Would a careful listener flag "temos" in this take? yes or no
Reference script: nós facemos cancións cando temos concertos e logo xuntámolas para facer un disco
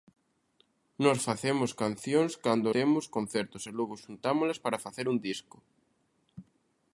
no